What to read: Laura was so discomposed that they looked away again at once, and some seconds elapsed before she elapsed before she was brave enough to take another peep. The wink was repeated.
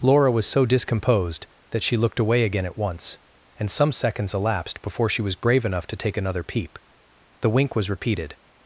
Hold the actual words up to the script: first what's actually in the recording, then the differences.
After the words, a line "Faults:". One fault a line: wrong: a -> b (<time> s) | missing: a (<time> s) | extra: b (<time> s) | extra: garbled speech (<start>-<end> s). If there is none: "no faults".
Laura was so discomposed that she looked away again at once, and some seconds elapsed before she was brave enough to take another peep. The wink was repeated.
Faults:
wrong: they -> she (1.8 s)
missing: elapsed before she (5.2 s)